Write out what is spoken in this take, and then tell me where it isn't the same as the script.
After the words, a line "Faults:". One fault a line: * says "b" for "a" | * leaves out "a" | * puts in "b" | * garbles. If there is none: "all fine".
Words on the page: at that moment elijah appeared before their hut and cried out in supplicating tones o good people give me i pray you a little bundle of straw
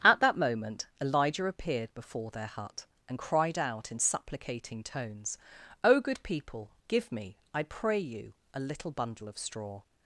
at that moment elijah appeared before their hut and cried out in supplicating tones o good people give me i pray you a little bundle of straw
Faults:
all fine